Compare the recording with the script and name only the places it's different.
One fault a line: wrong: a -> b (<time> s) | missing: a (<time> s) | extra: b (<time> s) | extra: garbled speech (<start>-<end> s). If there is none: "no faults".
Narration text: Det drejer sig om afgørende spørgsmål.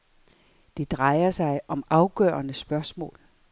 no faults